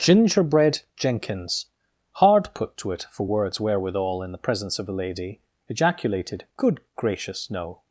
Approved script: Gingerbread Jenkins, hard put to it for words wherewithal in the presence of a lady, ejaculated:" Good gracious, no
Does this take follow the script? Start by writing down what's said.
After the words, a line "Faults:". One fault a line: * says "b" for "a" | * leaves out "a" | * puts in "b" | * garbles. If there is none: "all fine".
Gingerbread Jenkins, hard put to it for words wherewithal in the presence of a lady, ejaculated:" Good gracious, no
Faults:
all fine